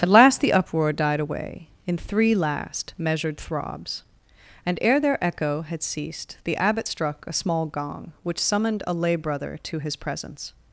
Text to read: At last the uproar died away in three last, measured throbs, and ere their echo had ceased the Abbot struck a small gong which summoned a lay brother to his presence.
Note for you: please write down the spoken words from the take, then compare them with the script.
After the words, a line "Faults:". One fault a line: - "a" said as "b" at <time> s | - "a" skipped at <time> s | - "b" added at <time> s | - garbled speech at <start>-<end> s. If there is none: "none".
At last the uproar died away in three last, measured throbs, and ere their echo had ceased the Abbot struck a small gong which summoned a lay brother to his presence.
Faults:
none